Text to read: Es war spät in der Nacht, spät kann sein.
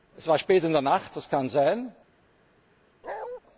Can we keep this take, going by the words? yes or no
no